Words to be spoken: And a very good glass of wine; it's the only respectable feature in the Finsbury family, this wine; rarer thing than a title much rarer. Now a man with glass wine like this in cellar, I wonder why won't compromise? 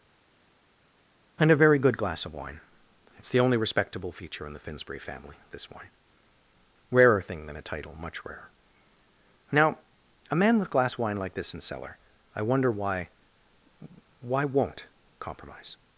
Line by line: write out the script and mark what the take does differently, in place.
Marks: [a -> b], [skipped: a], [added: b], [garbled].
And a very good glass of wine; it's the only respectable feature in the Finsbury family, this wine; rarer thing than a title much rarer. Now a man with glass wine like this in cellar, I wonder why [added: why] won't compromise?